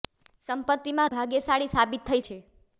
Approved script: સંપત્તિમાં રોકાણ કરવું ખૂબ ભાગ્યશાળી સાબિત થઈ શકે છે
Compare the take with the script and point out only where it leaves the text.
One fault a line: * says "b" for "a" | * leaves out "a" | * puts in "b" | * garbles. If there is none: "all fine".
* leaves out "રોકાણ કરવું ખૂબ"
* leaves out "શકે"